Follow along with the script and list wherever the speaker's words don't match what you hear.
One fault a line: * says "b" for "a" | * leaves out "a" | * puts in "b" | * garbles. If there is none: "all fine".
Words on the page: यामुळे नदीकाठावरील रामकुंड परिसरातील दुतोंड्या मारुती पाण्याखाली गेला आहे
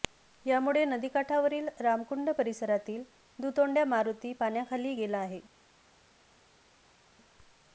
all fine